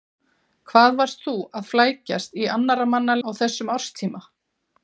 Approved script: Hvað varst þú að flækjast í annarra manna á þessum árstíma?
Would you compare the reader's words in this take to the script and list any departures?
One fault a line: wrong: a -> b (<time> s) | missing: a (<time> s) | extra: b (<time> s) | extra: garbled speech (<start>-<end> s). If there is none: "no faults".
no faults